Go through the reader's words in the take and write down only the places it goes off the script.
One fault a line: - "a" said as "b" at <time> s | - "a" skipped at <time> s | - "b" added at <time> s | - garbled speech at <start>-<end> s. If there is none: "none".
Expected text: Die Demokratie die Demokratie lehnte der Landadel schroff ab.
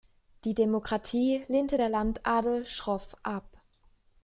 - "die Demokratie" skipped at 1.4 s